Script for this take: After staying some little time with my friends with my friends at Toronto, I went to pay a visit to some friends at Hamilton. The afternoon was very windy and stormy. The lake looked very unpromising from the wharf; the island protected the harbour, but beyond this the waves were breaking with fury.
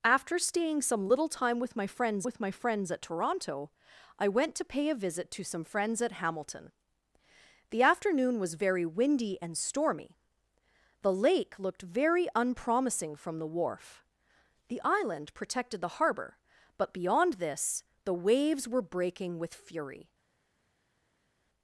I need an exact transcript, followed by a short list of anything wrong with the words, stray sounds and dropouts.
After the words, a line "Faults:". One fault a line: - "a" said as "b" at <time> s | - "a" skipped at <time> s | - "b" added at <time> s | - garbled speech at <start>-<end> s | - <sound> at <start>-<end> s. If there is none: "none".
After staying some little time with my friends with my friends at Toronto, I went to pay a visit to some friends at Hamilton. The afternoon was very windy and stormy. The lake looked very unpromising from the wharf; the island protected the harbour, but beyond this the waves were breaking with fury.
Faults:
none